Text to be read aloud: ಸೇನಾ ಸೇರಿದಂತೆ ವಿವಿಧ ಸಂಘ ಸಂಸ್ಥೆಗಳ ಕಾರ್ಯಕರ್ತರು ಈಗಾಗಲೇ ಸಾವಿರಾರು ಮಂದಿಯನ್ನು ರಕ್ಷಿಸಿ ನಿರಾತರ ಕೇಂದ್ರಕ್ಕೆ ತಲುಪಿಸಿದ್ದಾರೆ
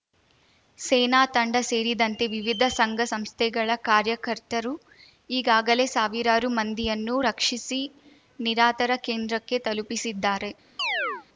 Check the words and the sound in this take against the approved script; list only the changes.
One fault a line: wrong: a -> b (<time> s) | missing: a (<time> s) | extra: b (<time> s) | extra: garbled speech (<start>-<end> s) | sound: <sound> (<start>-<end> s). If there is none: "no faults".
extra: ತಂಡ (1.3 s)
sound: chirp (10.8-11.3 s)